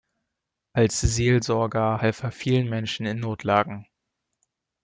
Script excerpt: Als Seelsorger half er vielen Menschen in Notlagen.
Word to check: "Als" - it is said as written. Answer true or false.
true